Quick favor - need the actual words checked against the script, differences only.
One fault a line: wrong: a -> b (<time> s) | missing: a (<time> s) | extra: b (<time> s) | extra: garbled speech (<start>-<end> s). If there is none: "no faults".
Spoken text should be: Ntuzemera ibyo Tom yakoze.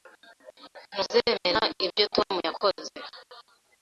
no faults